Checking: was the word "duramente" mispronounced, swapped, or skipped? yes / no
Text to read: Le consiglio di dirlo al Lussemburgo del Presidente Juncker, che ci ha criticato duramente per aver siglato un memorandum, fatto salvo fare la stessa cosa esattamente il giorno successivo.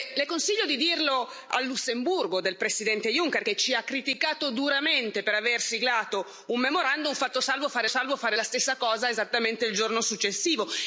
no